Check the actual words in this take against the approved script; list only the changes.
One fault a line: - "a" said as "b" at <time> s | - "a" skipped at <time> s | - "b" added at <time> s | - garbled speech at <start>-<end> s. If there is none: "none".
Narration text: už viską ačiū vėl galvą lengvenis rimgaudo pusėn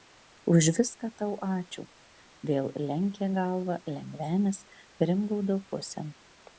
- "tau" added at 1.2 s
- "lenkė" added at 2.9 s